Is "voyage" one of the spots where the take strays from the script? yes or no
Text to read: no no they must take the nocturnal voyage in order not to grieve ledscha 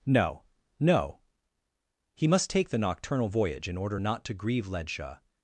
no